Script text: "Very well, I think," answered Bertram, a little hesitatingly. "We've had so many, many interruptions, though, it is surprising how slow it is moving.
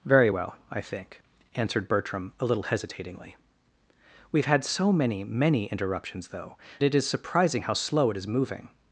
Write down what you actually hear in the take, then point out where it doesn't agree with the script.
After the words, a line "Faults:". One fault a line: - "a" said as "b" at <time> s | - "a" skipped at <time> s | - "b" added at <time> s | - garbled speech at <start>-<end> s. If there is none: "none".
"Very well, I think," answered Bertram, a little hesitatingly. "We've had so many, many interruptions, though, it is surprising how slow it is moving.
Faults:
none